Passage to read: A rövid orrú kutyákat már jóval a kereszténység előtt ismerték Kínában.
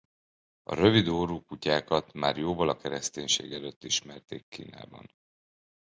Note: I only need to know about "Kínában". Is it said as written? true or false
true